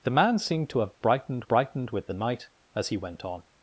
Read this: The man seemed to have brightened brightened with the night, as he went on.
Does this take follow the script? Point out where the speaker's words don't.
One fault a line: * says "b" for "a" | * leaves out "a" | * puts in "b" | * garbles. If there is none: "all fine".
all fine